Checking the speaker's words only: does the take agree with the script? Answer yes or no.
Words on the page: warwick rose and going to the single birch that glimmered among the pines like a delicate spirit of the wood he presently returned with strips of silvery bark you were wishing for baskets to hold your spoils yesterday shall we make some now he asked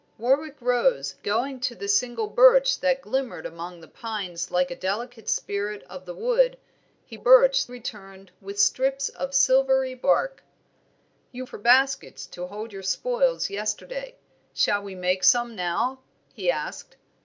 no